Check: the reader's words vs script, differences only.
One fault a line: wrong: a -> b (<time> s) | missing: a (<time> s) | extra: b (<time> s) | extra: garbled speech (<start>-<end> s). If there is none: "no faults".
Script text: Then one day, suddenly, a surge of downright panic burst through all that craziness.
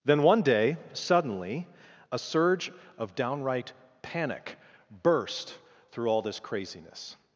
wrong: that -> this (6.2 s)